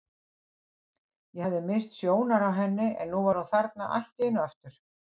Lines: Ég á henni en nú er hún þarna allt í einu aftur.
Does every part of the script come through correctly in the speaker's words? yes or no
no